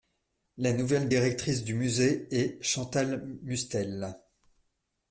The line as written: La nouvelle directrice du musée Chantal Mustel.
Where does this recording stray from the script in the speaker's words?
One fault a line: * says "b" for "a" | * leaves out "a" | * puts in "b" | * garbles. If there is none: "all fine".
* puts in "est"